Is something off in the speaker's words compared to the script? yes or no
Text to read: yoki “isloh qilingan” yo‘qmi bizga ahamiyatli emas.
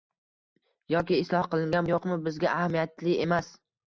no